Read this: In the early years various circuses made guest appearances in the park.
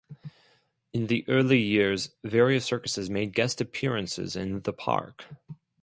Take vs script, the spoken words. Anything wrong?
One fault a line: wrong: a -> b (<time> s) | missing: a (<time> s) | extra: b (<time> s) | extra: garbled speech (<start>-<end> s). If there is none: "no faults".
no faults